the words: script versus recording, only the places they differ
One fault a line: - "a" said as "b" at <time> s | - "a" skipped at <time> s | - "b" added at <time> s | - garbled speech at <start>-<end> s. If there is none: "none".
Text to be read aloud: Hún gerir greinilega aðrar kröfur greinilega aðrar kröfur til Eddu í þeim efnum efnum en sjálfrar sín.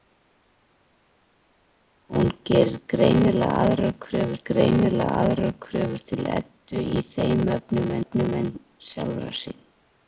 none